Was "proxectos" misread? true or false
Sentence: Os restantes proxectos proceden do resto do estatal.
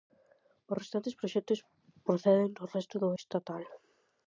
false